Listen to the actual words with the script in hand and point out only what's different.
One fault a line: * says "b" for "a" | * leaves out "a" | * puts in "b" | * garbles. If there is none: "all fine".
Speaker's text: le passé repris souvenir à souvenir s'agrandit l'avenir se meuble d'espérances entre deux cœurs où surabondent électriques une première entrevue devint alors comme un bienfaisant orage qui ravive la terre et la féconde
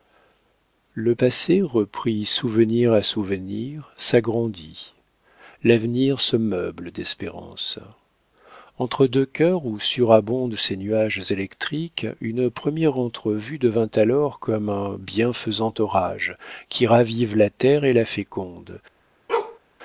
* puts in "ces nuages"